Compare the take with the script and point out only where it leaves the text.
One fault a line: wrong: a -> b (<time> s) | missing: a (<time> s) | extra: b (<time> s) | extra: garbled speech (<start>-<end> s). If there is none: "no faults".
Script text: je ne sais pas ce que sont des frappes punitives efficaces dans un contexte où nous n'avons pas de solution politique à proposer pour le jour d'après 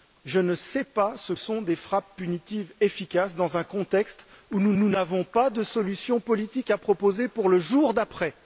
missing: que (1.3 s)
extra: nous (4.8 s)